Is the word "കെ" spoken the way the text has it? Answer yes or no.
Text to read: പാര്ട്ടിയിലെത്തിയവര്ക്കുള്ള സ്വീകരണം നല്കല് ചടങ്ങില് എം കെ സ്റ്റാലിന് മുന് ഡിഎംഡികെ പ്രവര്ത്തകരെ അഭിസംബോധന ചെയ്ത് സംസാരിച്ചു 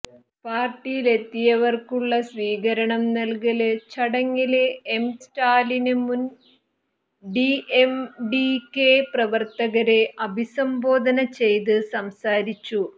no